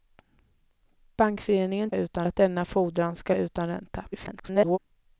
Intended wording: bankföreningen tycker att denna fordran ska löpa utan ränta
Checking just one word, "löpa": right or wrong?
wrong